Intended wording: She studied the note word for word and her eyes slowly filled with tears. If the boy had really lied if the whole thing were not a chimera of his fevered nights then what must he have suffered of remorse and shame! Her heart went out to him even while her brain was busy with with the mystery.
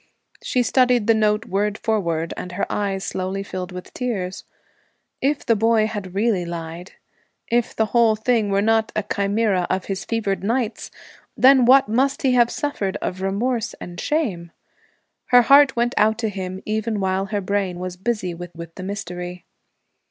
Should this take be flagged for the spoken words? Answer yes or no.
no